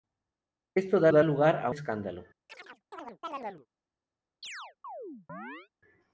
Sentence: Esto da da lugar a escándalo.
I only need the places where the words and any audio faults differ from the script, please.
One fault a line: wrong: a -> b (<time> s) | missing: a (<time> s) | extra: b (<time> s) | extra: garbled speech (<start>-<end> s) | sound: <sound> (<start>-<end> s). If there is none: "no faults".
sound: chirp (2.5-3.7 s)
sound: chirp (4.4-5.7 s)